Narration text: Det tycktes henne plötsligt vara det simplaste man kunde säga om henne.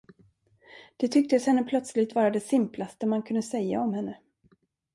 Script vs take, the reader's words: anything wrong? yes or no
no